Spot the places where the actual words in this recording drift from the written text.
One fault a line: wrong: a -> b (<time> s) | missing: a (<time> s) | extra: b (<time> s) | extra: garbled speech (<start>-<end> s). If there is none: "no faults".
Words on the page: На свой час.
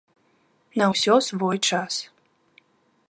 extra: ўсё (0.9 s)